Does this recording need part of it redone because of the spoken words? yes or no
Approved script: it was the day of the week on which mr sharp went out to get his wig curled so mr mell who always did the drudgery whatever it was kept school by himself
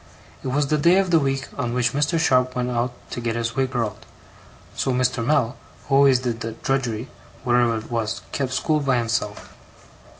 no